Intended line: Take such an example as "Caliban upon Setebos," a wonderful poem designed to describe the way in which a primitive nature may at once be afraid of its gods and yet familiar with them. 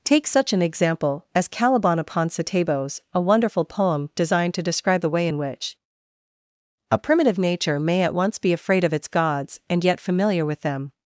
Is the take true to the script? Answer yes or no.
yes